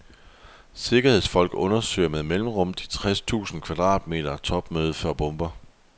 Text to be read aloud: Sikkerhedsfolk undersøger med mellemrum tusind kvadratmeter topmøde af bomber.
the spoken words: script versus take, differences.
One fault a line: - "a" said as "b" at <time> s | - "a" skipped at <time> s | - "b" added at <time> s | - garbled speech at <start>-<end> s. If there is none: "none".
- "de tres" added at 2.7 s
- "af" said as "for" at 4.9 s